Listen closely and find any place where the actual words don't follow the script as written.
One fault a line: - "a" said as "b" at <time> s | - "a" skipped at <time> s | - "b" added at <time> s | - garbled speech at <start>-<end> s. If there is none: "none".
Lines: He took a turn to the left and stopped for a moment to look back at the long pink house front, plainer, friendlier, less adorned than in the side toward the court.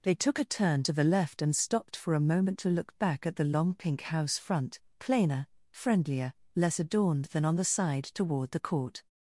- "He" said as "They" at 0.0 s
- "in" said as "on" at 7.4 s